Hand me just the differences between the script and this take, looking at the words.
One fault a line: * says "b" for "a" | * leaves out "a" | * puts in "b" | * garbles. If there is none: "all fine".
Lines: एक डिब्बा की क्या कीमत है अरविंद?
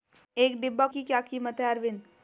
all fine